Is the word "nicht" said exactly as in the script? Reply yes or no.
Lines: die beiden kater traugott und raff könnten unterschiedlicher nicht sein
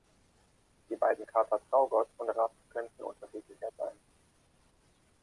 no